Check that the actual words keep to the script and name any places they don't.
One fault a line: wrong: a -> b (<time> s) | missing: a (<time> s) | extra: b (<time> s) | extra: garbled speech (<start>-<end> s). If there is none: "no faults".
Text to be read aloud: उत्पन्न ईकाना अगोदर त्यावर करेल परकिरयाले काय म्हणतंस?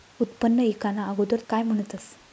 missing: त्यावर करेल परकिरयाले (1.4 s)